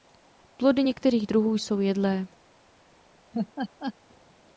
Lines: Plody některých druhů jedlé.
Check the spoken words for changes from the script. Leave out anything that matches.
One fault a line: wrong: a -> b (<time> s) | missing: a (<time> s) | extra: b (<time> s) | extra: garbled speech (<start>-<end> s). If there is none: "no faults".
extra: jsou (1.5 s)